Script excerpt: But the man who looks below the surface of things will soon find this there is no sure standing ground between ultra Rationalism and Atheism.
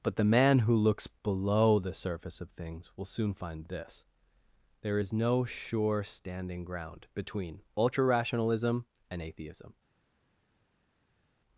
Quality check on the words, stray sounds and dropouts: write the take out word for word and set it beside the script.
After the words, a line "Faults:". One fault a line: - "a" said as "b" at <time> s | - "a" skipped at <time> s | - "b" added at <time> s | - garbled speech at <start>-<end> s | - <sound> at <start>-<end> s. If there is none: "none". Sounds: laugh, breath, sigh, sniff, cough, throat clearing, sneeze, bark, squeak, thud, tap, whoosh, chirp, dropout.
But the man who looks below the surface of things will soon find this there is no sure standing ground between ultra Rationalism and Atheism.
Faults:
none